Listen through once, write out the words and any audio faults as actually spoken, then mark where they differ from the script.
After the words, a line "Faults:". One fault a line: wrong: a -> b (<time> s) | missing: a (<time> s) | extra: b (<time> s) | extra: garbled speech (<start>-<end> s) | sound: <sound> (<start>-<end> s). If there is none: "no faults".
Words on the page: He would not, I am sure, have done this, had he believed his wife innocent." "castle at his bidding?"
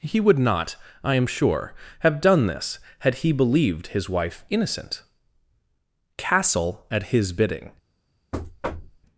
He would not, I am sure, have done this, had he believed his wife innocent." "castle at his bidding?"
Faults:
sound: thud (8.3-9.0 s)